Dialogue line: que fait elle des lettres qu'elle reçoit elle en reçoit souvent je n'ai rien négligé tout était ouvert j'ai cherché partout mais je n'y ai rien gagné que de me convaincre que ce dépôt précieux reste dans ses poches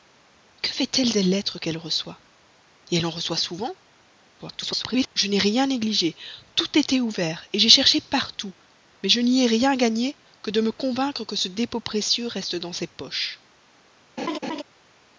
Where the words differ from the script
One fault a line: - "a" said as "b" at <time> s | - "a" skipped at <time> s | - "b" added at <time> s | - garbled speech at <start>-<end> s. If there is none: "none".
- garbled speech at 4.4-5.1 s